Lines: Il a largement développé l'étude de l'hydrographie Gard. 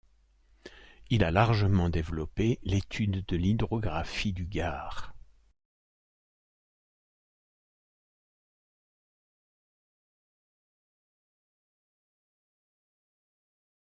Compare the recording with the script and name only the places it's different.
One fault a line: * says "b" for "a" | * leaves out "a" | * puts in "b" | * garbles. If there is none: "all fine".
* puts in "du"